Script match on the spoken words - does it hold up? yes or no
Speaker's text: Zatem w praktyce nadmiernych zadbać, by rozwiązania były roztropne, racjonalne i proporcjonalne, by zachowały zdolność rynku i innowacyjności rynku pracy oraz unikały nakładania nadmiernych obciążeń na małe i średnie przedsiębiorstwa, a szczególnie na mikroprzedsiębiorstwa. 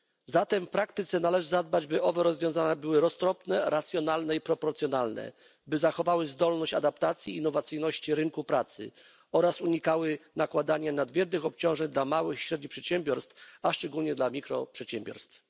no